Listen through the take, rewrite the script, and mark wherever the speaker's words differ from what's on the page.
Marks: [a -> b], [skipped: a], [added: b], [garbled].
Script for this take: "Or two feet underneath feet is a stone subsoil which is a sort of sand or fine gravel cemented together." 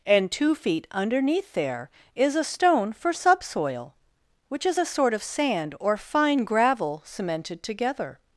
["Or -> And] two feet underneath [feet -> there] is a stone [added: for] subsoil which is a sort of sand or fine gravel cemented together."